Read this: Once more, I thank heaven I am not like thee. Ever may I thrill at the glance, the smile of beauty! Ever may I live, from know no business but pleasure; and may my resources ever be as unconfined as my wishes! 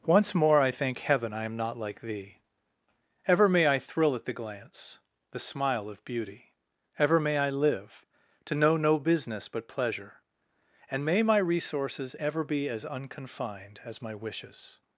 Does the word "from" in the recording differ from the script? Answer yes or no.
yes